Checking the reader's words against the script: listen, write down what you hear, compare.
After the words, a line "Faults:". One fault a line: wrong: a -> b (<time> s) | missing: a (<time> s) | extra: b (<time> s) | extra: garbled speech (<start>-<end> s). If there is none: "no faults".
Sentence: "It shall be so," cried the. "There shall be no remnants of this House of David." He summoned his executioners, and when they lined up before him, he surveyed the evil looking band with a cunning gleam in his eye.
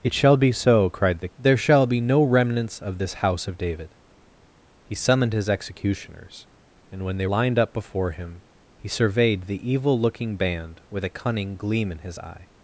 "It shall be so," cried the. "There shall be no remnants of this House of David." He summoned his executioners, and when they lined up before him, he surveyed the evil looking band with a cunning gleam in his eye.
Faults:
no faults